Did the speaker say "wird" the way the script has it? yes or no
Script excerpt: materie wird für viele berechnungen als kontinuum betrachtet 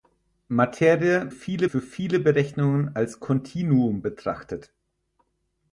no